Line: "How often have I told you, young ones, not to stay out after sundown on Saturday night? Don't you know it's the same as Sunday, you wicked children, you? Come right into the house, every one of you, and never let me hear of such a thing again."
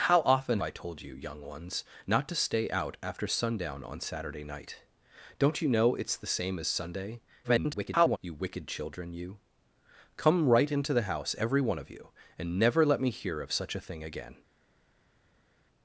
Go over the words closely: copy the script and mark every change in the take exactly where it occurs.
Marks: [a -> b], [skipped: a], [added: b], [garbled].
"How often [skipped: have] I told you, young ones, not to stay out after sundown on Saturday night? Don't you know it's the same as Sunday, [garbled] you wicked children, you? Come right into the house, every one of you, and never let me hear of such a thing again."